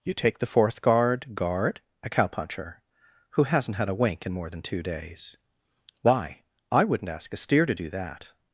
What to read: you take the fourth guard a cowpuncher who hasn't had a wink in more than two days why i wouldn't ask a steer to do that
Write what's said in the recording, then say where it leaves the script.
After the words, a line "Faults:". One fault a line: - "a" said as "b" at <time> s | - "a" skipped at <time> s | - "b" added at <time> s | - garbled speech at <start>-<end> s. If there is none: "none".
you take the fourth guard guard a cowpuncher who hasn't had a wink in more than two days why i wouldn't ask a steer to do that
Faults:
- "guard" added at 1.4 s